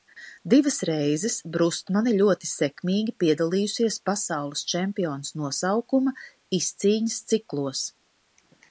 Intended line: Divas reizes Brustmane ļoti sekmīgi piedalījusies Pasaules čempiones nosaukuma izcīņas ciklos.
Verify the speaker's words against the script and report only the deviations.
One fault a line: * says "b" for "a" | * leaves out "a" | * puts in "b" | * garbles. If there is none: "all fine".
all fine